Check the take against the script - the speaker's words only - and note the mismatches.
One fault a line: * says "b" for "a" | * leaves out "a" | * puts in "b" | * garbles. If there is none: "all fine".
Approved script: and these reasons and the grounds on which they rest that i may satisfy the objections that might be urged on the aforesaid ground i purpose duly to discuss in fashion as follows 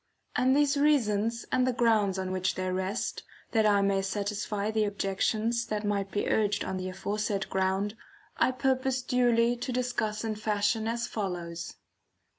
all fine